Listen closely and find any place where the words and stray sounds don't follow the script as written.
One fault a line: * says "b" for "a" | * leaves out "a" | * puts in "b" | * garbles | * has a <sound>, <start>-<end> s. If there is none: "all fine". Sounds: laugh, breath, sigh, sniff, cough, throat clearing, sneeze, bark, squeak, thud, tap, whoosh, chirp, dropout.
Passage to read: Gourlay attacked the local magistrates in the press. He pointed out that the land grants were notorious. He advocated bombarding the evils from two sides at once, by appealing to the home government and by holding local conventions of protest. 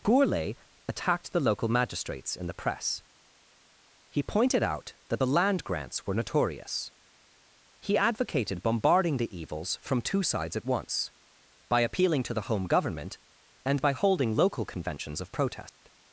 * has a dropout, 15.7-15.8 s